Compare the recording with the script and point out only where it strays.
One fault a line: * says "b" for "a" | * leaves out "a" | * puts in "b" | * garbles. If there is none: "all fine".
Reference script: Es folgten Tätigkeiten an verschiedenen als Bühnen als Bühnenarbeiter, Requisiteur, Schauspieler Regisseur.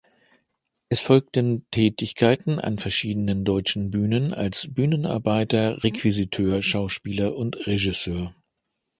* says "deutschen" for "als"
* puts in "und"